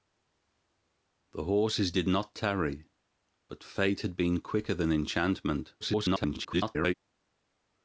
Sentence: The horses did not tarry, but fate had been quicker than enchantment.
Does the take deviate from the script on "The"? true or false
false